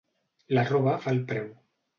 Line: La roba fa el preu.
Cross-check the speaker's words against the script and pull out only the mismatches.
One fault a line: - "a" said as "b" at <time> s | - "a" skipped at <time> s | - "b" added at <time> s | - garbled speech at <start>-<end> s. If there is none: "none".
none